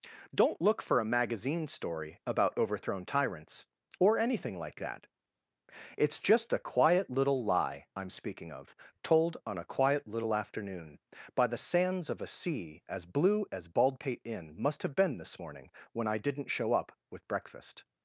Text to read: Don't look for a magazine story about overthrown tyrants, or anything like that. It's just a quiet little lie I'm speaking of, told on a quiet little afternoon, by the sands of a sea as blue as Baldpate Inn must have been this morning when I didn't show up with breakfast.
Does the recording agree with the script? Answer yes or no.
yes